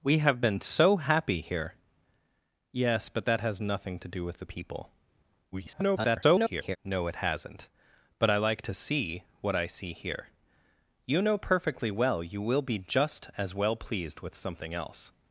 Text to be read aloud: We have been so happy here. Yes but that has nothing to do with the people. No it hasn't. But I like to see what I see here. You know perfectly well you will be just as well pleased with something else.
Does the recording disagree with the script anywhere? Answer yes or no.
yes